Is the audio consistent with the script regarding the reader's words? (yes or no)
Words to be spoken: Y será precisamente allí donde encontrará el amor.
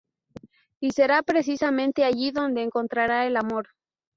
yes